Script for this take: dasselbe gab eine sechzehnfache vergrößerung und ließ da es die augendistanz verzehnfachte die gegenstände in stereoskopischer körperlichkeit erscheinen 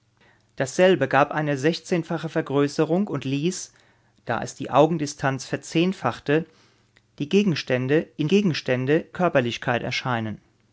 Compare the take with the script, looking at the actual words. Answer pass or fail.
fail